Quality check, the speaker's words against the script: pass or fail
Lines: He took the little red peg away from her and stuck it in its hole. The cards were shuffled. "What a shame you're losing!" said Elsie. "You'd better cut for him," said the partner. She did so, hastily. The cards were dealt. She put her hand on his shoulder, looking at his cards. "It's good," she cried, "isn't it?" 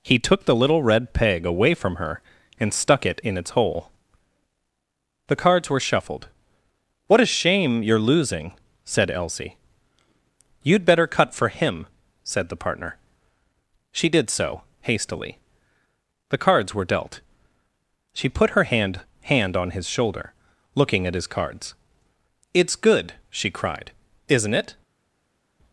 fail